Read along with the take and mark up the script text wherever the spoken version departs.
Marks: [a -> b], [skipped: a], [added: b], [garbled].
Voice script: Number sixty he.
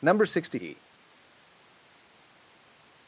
Number sixty he.